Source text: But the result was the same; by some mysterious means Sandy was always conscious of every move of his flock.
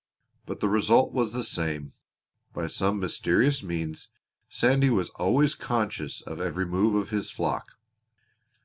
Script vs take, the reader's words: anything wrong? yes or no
no